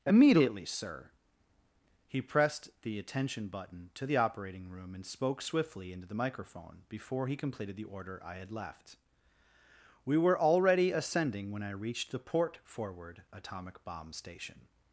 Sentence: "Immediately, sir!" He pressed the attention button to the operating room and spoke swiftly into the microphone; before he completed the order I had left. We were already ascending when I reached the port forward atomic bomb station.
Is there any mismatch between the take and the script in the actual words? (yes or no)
no